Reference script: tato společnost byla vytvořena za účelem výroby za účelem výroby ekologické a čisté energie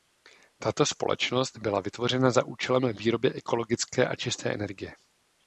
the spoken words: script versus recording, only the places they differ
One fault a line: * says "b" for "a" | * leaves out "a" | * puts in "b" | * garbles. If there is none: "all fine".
* leaves out "za účelem výroby"